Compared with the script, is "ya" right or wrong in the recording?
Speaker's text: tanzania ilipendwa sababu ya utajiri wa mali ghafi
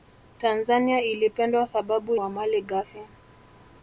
wrong